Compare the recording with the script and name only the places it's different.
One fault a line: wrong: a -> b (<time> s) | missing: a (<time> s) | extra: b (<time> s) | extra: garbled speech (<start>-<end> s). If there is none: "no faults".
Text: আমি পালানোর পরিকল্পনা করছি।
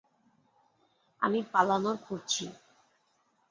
missing: পরিকল্পনা (2.0 s)